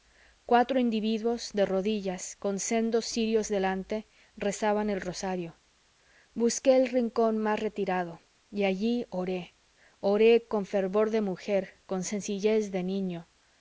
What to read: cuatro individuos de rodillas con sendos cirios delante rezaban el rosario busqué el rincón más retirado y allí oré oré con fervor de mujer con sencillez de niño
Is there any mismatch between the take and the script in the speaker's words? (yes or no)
no